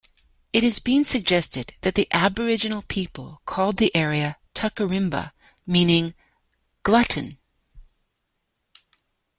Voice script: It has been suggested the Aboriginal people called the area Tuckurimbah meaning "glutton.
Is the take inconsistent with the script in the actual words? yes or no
yes